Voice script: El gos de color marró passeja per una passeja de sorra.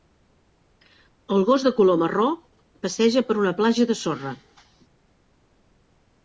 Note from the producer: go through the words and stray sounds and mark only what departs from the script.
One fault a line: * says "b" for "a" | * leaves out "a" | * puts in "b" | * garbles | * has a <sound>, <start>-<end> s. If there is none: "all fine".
* says "platja" for "passeja"